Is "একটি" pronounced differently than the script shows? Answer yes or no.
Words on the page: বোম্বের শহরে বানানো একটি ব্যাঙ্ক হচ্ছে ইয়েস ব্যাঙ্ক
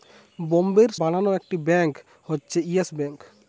no